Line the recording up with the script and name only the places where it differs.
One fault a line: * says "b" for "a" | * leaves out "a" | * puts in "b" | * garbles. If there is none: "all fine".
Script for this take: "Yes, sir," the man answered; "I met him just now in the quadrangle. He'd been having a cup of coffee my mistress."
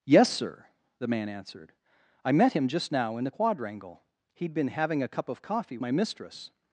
all fine